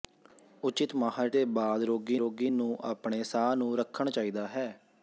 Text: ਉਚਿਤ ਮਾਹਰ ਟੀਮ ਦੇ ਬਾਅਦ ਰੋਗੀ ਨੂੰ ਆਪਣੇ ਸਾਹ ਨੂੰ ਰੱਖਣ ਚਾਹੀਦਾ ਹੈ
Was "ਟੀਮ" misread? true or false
true